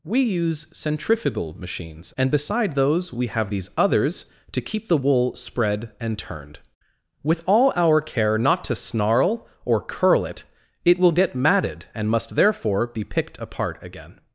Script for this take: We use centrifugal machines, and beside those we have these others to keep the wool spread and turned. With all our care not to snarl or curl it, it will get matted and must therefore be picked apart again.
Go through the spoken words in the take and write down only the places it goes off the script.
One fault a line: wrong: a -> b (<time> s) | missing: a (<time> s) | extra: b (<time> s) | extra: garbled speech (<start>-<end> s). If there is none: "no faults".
no faults